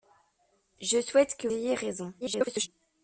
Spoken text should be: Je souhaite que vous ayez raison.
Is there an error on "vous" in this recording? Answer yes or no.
yes